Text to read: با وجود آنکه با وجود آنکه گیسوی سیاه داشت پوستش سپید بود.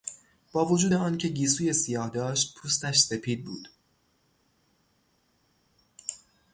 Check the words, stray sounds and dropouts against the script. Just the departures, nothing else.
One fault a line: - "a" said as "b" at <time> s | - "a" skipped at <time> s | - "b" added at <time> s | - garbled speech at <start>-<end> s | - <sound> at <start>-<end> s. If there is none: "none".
- "با وجود آنکه" skipped at 1.3 s